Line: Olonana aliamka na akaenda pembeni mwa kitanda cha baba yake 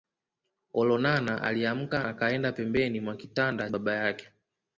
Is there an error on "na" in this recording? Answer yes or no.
yes